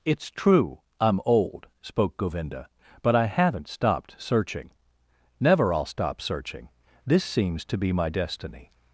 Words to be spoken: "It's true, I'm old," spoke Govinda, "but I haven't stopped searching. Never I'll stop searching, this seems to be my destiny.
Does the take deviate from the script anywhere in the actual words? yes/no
no